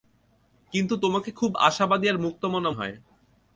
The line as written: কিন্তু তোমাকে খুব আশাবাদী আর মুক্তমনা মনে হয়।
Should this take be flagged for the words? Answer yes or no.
yes